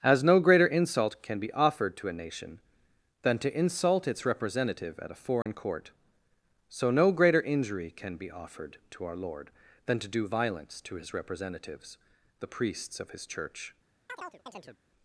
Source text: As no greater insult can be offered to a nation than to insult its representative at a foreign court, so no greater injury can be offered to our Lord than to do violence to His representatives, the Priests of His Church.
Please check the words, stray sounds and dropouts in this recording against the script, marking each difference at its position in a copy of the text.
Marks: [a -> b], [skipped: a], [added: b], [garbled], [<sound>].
As no greater insult can be offered to a nation than to insult its representative at a foreign [dropout] court, so no greater injury can be offered to our Lord than to do violence to His representatives, the Priests of His Church. [chirp]